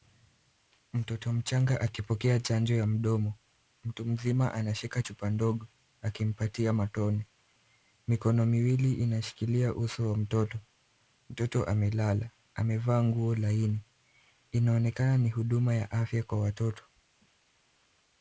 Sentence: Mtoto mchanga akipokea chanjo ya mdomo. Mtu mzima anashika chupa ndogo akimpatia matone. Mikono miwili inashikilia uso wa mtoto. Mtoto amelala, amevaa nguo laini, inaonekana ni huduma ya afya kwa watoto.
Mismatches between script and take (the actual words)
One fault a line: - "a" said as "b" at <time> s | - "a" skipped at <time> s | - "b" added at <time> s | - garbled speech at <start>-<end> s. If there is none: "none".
none